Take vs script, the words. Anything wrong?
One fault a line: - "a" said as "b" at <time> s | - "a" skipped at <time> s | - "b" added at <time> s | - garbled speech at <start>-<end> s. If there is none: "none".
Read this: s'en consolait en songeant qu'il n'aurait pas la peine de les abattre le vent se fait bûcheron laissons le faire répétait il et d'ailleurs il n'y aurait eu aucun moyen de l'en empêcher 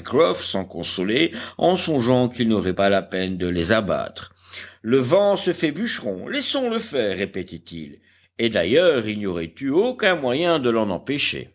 none